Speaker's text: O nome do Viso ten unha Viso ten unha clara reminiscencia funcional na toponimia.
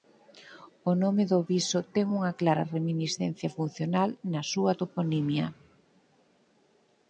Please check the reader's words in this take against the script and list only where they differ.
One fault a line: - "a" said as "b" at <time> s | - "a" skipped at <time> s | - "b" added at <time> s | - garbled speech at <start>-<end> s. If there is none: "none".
- "Viso ten unha" skipped at 2.3 s
- "súa" added at 4.5 s